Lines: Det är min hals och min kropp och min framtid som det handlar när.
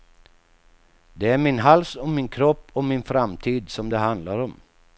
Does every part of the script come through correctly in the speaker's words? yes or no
no